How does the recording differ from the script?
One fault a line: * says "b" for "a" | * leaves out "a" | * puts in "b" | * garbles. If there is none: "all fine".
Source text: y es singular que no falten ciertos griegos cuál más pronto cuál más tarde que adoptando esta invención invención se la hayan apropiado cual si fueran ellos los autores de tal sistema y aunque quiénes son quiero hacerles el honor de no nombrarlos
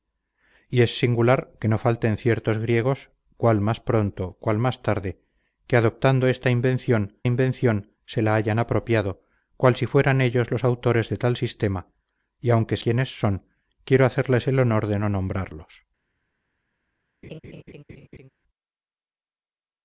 all fine